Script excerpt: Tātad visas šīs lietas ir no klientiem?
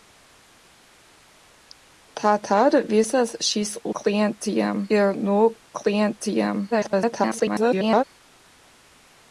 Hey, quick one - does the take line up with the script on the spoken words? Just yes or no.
no